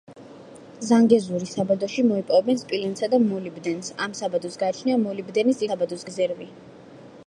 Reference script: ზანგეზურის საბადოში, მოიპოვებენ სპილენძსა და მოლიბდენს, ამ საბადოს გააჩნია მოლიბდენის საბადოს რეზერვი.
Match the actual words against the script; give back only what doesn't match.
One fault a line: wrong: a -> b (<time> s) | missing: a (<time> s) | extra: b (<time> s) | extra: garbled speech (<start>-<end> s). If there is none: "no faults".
no faults